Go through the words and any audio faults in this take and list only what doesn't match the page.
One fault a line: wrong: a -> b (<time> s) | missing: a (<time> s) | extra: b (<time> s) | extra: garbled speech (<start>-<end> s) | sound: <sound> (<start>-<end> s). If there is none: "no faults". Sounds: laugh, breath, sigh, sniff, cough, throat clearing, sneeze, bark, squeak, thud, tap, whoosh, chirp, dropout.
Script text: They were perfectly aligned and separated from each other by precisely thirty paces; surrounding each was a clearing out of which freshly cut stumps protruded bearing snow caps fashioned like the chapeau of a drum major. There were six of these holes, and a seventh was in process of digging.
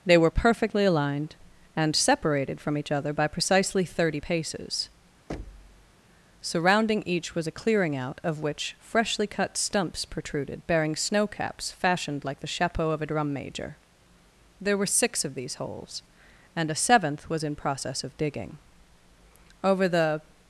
sound: thud (5.3-5.9 s)
extra: Over the (19.6 s)